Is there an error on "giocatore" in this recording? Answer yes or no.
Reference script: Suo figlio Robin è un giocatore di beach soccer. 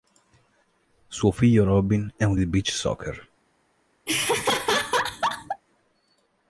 yes